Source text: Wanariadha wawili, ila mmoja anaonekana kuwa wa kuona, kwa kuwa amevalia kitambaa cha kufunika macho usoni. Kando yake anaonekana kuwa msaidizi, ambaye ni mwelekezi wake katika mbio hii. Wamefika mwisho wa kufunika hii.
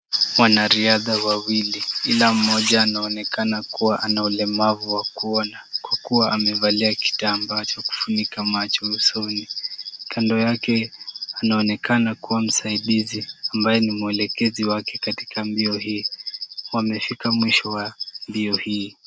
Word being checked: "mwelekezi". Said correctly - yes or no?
yes